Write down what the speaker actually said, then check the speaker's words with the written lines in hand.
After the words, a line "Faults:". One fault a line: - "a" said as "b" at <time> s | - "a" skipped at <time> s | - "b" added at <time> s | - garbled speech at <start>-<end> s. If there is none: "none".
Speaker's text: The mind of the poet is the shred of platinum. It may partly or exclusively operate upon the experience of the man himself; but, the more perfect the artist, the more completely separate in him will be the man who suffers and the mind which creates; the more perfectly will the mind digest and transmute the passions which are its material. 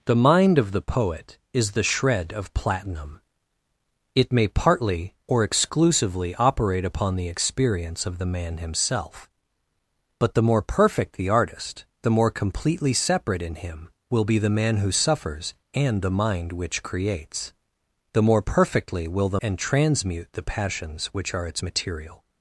The mind of the poet is the shred of platinum. It may partly or exclusively operate upon the experience of the man himself; but, the more perfect the artist, the more completely separate in him will be the man who suffers and the mind which creates; the more perfectly will the and transmute the passions which are its material.
Faults:
- "mind digest" skipped at 19.4 s